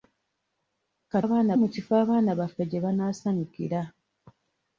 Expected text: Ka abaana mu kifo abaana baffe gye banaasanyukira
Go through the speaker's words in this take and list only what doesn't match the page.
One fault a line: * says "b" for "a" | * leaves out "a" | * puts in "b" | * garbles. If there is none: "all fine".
all fine